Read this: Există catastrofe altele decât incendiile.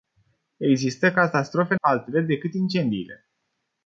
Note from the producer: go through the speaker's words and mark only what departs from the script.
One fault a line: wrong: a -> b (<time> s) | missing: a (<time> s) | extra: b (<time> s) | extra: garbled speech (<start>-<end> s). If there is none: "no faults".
no faults